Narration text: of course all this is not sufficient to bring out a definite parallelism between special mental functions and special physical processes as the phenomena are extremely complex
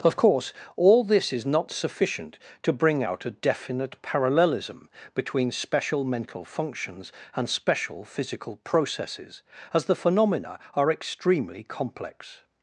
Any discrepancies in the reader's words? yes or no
no